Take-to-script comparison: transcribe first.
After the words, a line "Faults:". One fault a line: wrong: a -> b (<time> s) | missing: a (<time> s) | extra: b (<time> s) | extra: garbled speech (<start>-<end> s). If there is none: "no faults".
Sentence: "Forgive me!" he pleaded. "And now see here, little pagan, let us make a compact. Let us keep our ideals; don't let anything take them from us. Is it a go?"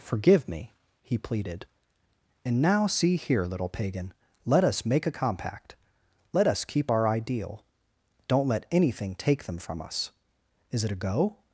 "Forgive me!" he pleaded. "And now see here, little pagan, let us make a compact. Let us keep our ideal; don't let anything take them from us. Is it a go?"
Faults:
wrong: ideals -> ideal (7.1 s)